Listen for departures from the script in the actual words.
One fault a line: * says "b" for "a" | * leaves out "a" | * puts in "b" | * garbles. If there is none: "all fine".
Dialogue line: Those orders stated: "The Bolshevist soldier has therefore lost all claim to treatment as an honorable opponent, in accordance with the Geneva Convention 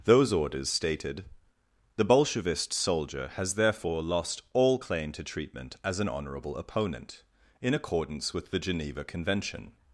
all fine